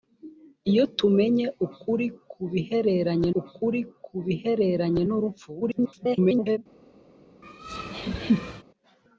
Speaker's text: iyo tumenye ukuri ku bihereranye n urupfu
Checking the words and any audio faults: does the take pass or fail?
fail